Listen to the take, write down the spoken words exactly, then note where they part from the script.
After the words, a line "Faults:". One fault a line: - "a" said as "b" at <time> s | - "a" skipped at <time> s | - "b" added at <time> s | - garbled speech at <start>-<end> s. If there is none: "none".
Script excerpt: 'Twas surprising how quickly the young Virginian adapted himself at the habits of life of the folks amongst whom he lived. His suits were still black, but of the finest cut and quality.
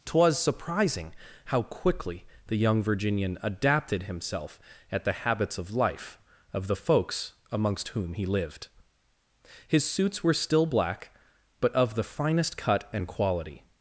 'Twas surprising how quickly the young Virginian adapted himself at the habits of life of the folks amongst whom he lived. His suits were still black, but of the finest cut and quality.
Faults:
none